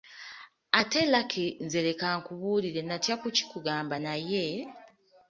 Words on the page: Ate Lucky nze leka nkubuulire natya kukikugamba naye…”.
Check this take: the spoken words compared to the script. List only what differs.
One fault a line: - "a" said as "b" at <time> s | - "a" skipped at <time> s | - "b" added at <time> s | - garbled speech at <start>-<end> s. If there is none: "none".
none